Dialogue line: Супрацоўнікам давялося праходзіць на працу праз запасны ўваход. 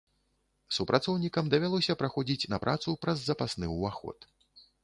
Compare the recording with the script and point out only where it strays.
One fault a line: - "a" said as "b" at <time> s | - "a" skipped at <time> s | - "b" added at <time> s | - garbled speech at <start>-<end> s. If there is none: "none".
none